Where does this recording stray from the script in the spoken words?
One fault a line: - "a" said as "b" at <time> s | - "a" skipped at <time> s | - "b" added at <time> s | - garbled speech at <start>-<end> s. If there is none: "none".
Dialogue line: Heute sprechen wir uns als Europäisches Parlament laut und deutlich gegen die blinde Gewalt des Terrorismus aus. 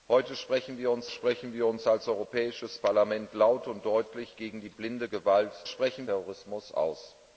- "sprechen wir uns" added at 1.1 s
- "des" said as "sprechen" at 5.6 s